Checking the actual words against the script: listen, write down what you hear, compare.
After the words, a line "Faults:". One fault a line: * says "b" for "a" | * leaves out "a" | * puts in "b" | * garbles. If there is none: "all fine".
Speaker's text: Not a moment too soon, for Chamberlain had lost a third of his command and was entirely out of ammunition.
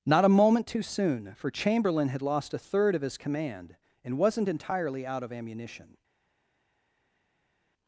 Not a moment too soon, for Chamberlain had lost a third of his command and wasn't entirely out of ammunition.
Faults:
* says "wasn't" for "was"